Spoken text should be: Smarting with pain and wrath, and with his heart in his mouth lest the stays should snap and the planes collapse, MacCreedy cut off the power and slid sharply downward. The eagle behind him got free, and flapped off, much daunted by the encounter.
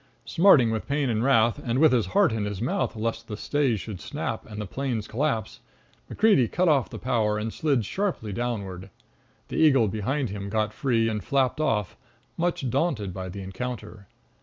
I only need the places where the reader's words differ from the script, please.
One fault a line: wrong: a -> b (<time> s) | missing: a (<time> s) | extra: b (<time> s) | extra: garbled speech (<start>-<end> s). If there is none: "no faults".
no faults